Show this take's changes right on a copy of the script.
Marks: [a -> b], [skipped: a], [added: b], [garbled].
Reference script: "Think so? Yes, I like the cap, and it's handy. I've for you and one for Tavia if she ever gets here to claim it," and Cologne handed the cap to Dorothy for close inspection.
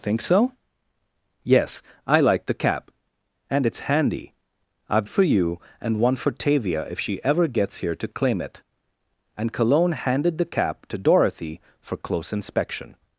"Think so? Yes, I like the cap, and it's handy. I've for you and one for Tavia if she ever gets here to claim it," and Cologne handed the cap to Dorothy for close inspection.